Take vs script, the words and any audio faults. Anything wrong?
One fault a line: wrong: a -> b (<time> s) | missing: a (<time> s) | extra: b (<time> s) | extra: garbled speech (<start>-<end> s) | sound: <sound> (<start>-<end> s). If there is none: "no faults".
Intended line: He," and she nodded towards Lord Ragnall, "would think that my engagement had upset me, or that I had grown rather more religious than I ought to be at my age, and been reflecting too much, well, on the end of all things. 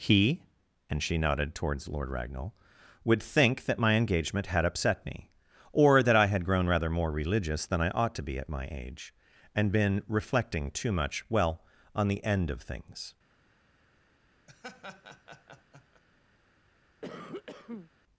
missing: all (12.6 s)
sound: laugh (14.5-16.0 s)
sound: cough (17.0-17.9 s)